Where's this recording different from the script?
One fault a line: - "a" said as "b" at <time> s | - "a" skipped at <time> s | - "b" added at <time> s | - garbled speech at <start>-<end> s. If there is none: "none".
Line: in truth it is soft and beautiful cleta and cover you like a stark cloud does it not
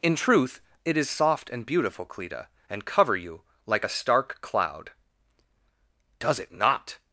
none